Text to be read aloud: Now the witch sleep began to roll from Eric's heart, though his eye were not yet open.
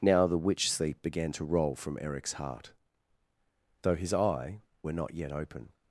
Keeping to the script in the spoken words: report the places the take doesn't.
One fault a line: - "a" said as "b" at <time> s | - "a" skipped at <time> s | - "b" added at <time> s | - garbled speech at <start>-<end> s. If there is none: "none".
none